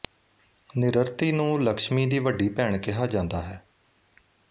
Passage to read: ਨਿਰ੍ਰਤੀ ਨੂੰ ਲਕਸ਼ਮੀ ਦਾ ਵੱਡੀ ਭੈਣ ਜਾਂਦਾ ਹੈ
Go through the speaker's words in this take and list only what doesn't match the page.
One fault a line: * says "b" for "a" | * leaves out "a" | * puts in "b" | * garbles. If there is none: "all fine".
* says "ਦੀ" for "ਦਾ"
* puts in "ਕਿਹਾ"